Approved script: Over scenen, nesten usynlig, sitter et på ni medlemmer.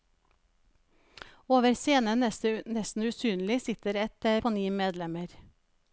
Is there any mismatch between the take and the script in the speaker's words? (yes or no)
no